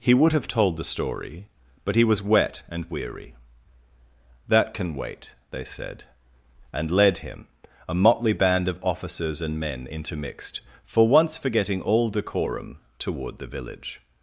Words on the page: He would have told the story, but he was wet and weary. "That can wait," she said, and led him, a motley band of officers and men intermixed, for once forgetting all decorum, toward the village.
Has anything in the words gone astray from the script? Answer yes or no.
yes